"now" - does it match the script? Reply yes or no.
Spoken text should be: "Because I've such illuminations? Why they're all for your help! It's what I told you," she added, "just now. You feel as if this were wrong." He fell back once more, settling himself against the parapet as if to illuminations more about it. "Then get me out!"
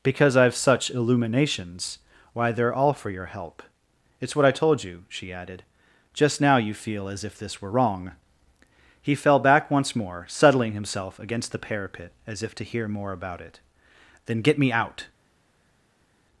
yes